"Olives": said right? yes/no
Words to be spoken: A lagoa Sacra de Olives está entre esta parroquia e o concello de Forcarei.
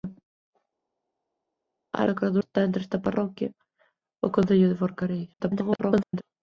no